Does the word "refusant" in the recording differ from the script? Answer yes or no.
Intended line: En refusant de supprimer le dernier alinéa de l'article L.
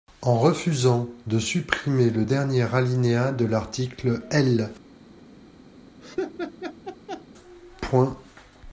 no